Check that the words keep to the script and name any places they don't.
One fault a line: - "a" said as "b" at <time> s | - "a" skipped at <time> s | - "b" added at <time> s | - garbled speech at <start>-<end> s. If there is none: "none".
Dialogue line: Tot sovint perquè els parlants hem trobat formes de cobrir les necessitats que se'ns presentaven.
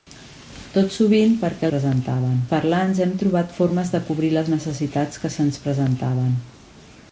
- "els" said as "presentaven" at 1.7 s